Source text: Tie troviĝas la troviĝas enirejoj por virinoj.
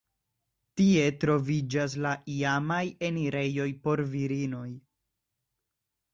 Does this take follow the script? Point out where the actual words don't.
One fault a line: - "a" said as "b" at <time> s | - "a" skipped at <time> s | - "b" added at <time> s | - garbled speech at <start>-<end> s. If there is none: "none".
- "troviĝas" said as "iamaj" at 2.4 s